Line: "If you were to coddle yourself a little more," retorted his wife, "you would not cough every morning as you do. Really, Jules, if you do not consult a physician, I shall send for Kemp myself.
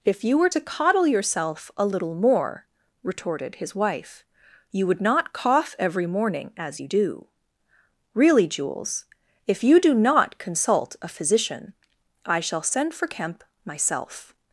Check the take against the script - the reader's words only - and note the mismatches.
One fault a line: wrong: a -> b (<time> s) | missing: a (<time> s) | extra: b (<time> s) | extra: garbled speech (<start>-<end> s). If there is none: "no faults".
no faults